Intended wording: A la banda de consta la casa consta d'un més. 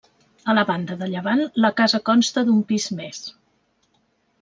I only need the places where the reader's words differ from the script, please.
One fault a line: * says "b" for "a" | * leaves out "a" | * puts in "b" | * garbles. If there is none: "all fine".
* says "llevant" for "consta"
* puts in "pis"